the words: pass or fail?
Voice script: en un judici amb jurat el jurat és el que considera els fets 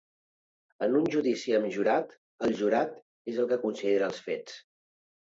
pass